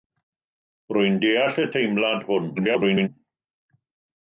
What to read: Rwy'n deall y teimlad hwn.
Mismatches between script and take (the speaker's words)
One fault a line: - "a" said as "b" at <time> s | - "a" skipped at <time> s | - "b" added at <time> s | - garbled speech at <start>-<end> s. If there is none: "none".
- garbled speech at 2.6-3.1 s